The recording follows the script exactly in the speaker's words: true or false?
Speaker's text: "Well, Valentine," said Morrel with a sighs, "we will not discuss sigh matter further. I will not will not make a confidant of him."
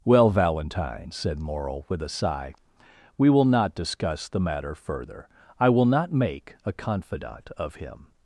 false